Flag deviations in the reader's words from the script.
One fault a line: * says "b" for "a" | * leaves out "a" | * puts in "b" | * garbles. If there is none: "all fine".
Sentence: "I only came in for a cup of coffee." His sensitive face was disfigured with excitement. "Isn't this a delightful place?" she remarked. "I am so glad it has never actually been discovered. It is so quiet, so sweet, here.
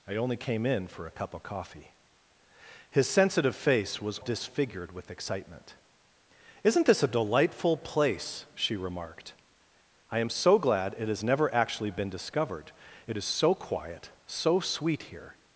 all fine